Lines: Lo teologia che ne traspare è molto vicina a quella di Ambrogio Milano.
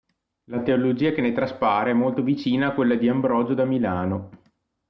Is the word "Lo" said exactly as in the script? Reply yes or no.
no